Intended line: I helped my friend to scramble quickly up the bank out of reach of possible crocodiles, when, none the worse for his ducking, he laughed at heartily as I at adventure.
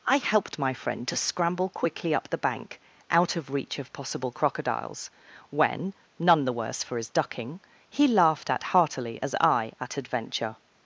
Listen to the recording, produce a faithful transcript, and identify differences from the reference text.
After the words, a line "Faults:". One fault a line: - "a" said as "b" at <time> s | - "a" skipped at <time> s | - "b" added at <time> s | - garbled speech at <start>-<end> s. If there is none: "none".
I helped my friend to scramble quickly up the bank out of reach of possible crocodiles, when, none the worse for his ducking, he laughed at heartily as I at adventure.
Faults:
none